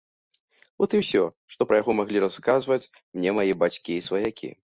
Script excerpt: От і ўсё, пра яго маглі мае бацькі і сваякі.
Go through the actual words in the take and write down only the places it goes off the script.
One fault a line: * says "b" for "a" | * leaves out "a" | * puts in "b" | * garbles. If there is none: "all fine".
* puts in "што"
* puts in "расказваць мне"